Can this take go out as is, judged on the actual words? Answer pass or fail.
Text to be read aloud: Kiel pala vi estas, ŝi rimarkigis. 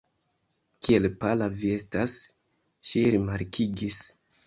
pass